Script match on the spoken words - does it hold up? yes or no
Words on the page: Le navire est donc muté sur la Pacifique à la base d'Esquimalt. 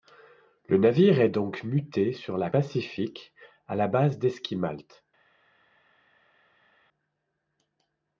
yes